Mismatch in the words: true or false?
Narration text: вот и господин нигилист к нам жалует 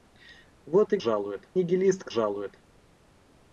true